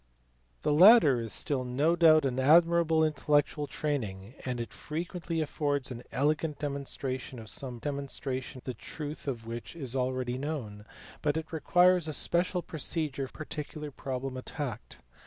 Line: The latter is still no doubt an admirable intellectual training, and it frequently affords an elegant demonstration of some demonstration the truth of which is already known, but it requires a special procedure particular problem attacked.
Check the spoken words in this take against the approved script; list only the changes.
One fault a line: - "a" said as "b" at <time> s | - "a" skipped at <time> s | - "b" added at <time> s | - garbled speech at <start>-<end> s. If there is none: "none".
none